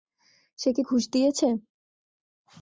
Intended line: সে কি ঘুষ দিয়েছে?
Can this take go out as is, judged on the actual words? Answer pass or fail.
pass